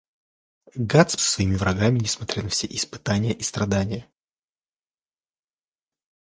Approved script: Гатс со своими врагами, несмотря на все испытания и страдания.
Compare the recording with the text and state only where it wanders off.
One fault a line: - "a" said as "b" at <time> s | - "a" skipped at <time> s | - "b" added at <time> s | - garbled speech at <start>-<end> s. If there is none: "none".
none